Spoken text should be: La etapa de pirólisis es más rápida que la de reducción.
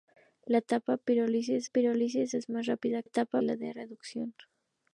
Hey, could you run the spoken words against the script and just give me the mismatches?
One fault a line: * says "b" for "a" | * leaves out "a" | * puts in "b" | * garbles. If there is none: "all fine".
* puts in "pirólisis"
* says "etapa" for "que"